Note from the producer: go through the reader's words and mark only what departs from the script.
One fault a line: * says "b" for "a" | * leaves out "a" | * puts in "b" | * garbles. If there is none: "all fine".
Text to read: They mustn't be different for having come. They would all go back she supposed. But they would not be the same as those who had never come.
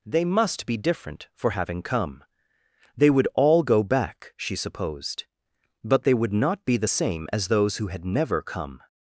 * says "must" for "mustn't"